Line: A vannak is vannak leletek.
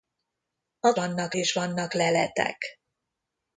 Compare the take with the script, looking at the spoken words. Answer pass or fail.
pass